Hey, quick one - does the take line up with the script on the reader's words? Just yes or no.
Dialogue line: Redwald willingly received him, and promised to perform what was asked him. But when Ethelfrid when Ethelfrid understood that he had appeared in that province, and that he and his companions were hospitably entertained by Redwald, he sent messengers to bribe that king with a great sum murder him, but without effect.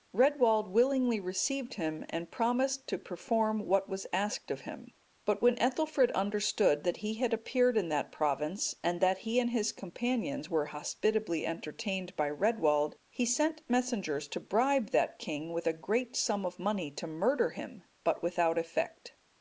no